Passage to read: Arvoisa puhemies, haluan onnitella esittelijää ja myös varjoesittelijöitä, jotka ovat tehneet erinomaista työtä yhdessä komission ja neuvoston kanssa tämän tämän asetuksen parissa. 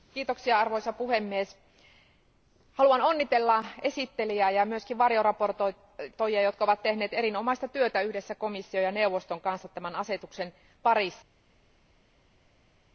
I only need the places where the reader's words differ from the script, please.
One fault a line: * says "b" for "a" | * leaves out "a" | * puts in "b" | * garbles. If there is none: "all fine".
* leaves out "tämän"